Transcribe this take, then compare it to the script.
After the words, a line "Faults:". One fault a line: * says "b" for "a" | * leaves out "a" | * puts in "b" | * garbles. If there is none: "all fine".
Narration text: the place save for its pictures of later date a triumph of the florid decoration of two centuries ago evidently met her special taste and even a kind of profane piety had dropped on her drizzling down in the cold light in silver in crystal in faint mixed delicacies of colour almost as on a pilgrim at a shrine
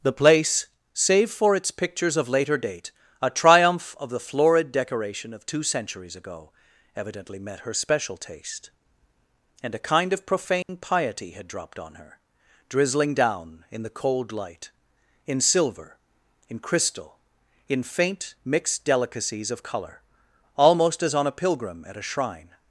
the place save for its pictures of later date a triumph of the florid decoration of two centuries ago evidently met her special taste and a kind of profane piety had dropped on her drizzling down in the cold light in silver in crystal in faint mixed delicacies of colour almost as on a pilgrim at a shrine
Faults:
* leaves out "even"